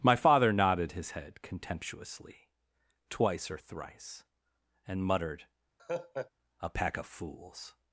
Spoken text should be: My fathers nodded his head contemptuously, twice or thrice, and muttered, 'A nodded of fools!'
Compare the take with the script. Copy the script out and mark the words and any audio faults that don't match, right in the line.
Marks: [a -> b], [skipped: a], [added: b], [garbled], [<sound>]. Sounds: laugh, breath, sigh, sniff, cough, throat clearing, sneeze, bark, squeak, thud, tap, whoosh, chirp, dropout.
My [fathers -> father] nodded his head contemptuously, twice or thrice, and muttered, [laugh] 'A [nodded -> pack] of fools!'